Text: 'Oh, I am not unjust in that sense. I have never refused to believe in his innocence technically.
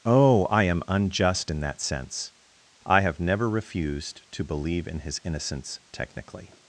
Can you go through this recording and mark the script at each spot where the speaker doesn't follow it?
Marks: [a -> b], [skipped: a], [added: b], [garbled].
'Oh, I am [skipped: not] unjust in that sense. I have never refused to believe in his innocence technically.